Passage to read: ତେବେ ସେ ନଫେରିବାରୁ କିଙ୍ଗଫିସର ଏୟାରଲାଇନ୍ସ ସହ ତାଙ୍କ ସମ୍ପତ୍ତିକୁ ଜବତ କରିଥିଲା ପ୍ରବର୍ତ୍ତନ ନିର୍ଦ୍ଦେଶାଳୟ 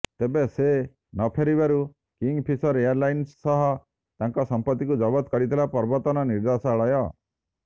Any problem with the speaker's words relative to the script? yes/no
no